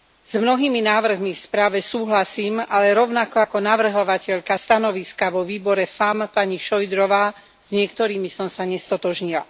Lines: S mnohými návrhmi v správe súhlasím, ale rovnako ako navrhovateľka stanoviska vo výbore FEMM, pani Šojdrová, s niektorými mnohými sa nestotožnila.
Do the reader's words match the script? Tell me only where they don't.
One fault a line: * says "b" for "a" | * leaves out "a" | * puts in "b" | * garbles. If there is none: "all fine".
* says "som" for "mnohými"